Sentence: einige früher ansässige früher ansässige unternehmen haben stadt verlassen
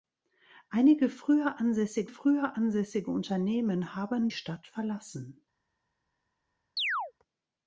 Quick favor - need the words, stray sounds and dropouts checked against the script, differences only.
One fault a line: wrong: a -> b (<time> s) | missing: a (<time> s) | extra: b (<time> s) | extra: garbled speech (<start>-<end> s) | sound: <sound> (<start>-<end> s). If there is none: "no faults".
sound: chirp (6.8-7.1 s)